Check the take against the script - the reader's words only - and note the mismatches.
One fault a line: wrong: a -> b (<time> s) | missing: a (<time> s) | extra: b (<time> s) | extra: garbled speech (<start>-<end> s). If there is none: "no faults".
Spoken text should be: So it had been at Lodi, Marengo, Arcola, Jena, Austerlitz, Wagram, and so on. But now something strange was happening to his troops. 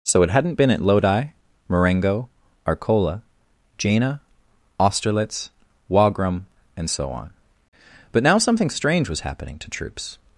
wrong: had -> hadn't (0.3 s)
missing: his (9.7 s)